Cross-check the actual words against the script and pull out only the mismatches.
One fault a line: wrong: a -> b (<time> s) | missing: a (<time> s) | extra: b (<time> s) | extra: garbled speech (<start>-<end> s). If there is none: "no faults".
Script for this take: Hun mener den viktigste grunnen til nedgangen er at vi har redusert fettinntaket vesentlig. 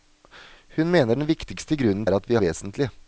missing: til nedgangen (2.1 s)
missing: har redusert fettinntaket (2.4 s)